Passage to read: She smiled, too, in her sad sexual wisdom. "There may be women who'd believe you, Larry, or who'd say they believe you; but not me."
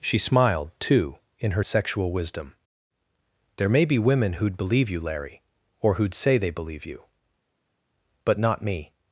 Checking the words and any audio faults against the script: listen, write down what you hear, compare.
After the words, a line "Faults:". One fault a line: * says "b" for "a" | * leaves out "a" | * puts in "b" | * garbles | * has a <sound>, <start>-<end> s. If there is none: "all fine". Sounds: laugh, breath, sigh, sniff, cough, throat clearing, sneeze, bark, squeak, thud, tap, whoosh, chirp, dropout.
She smiled, too, in her sexual wisdom. "There may be women who'd believe you, Larry, or who'd say they believe you; but not me."
Faults:
* leaves out "sad"